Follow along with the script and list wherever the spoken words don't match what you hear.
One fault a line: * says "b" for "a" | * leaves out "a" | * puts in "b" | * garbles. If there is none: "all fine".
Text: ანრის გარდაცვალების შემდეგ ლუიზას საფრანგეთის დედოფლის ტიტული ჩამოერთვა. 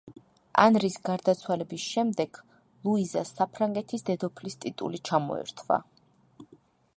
all fine